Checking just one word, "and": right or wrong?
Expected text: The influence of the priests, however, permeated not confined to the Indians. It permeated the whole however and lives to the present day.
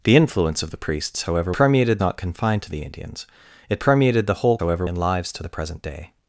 right